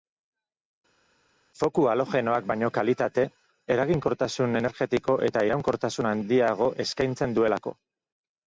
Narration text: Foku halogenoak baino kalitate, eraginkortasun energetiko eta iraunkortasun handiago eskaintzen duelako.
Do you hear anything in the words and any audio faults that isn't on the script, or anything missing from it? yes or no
no